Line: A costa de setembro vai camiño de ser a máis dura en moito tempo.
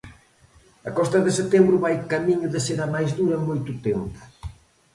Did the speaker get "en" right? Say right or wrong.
right